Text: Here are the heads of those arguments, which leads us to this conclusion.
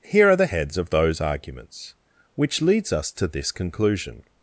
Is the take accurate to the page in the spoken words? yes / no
yes